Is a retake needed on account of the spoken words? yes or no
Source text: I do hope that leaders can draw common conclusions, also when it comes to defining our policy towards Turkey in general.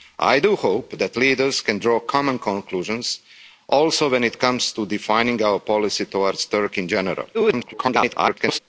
yes